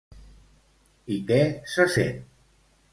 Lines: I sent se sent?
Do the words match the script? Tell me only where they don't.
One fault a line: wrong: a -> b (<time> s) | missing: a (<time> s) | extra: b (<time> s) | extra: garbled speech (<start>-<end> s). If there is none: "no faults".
wrong: sent -> què (1.3 s)